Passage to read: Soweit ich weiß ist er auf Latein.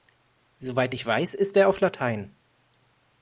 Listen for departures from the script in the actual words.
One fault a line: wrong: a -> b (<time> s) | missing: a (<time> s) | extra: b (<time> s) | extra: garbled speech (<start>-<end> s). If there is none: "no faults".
no faults